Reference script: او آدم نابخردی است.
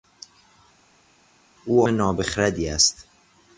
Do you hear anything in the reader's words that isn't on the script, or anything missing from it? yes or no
yes